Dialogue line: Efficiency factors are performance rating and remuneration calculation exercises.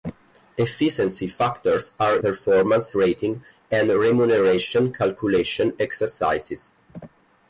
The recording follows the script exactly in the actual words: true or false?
true